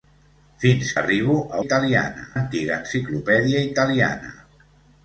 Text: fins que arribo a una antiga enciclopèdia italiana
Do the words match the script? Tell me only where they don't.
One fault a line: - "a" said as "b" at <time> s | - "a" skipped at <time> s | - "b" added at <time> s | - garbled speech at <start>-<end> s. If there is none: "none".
- "que" skipped at 0.9 s
- "una" said as "italiana" at 1.6 s